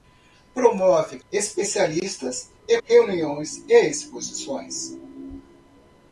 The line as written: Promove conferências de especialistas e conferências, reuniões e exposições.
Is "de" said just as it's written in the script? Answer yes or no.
no